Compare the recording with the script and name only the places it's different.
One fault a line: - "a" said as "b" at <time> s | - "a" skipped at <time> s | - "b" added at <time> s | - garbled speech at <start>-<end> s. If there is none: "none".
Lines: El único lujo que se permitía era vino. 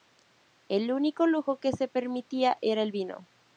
- "el" added at 2.8 s